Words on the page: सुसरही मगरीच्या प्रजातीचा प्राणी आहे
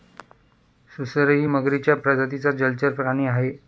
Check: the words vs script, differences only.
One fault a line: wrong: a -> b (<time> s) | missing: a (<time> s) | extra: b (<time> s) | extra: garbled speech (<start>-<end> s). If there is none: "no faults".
extra: जलचर (2.5 s)